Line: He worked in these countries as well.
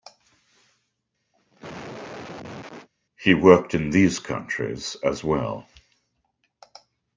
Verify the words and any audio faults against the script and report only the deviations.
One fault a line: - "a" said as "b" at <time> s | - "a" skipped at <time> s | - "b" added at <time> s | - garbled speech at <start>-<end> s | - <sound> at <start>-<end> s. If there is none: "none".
- cough at 1.3-2.9 s